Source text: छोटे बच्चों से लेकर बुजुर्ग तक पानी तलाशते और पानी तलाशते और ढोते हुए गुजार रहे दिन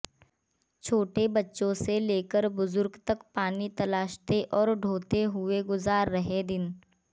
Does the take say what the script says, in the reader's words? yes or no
no